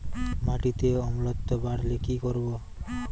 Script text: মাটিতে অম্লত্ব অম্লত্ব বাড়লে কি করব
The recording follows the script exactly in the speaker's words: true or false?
false